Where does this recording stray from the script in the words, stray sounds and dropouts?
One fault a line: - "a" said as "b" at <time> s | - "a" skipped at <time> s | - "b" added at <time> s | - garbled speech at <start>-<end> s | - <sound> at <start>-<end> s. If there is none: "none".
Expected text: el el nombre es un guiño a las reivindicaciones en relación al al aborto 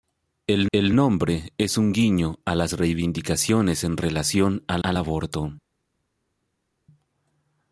none